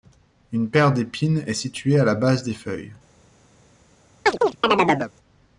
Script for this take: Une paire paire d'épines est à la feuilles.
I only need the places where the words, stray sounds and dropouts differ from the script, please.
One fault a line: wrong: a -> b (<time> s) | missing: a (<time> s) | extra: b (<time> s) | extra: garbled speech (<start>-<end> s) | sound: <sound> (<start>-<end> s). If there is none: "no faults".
missing: paire (0.9 s)
extra: située (1.5 s)
extra: base des (2.1 s)
sound: chirp (4.3-5.1 s)